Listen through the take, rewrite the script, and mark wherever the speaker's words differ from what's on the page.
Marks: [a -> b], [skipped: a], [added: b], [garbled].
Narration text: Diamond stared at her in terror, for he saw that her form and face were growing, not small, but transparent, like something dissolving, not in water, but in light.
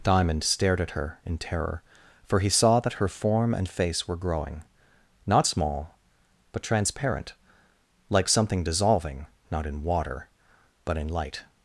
Diamond stared at her in terror, for he saw that her form and face were growing, not small, but transparent, like something dissolving, not in water, but in light.